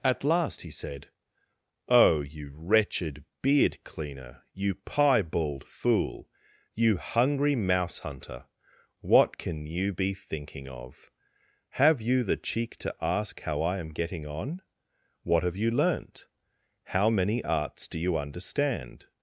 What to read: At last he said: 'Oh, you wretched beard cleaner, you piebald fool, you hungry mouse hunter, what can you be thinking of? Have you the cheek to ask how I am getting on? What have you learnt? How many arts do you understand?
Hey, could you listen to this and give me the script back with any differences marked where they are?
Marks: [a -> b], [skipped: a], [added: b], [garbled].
At last he said: 'Oh, you wretched beard cleaner, you piebald fool, you hungry mouse hunter, what can you be thinking of? Have you the cheek to ask how I am getting on? What have you learnt? How many arts do you understand?